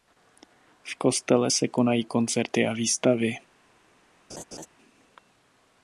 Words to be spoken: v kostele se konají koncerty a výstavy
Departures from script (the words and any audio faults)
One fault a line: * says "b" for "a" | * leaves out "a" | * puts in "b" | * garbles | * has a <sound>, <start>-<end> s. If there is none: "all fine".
* has a laugh, 4.3-4.7 s